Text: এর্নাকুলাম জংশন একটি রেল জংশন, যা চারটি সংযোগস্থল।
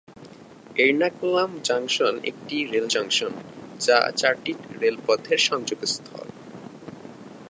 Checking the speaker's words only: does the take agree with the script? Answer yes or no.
no